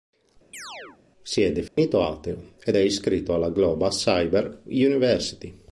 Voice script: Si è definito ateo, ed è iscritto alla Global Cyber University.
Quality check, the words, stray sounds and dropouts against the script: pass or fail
fail